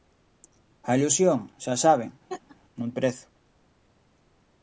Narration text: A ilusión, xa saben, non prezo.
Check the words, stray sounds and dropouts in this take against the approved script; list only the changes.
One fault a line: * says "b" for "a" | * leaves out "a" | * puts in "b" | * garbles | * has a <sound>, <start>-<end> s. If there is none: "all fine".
* has a laugh, 2.3-2.6 s